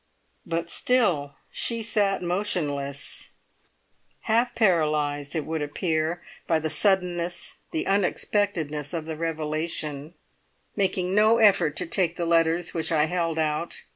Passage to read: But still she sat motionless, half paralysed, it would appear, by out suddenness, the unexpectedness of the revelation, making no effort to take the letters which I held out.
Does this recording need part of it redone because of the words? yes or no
yes